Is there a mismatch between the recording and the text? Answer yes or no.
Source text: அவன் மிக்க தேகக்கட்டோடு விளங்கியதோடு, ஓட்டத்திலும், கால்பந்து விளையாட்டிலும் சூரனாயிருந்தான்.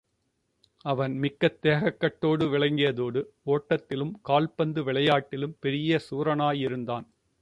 yes